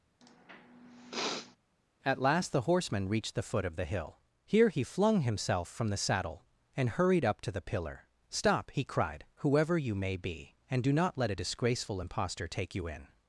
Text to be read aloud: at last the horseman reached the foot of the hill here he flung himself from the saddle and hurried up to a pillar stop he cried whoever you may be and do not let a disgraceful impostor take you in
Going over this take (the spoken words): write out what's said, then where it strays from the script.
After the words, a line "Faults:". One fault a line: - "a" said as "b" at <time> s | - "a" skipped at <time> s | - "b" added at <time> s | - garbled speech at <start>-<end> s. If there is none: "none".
at last the horseman reached the foot of the hill here he flung himself from the saddle and hurried up to the pillar stop he cried whoever you may be and do not let a disgraceful impostor take you in
Faults:
- "a" said as "the" at 7.5 s